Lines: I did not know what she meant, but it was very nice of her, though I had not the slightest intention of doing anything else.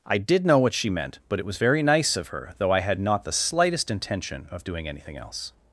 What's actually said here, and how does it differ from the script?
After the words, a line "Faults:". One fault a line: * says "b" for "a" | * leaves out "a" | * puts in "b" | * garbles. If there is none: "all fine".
I did know what she meant, but it was very nice of her, though I had not the slightest intention of doing anything else.
Faults:
* leaves out "not"